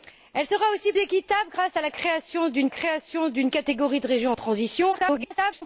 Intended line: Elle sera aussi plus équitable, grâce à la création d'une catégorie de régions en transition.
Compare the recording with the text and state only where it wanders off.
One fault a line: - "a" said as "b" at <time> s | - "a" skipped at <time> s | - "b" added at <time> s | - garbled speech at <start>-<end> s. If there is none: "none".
- "plus" skipped at 0.9 s
- "création d'une" added at 2.7 s
- garbled speech at 4.9-5.6 s